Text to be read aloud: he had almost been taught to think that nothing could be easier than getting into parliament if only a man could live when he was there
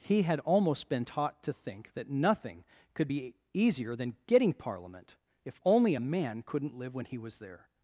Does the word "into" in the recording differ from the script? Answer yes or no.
yes